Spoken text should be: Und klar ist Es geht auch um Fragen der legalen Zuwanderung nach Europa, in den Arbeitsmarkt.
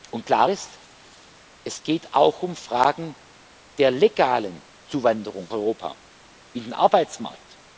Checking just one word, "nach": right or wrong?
wrong